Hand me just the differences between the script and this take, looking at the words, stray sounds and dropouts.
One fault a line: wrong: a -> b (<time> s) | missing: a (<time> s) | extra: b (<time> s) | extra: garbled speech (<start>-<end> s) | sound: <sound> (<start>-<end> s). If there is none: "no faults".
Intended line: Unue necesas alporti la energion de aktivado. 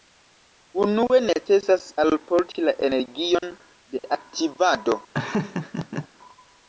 sound: dropout (3.4-3.4 s)
sound: laugh (5.1-6.1 s)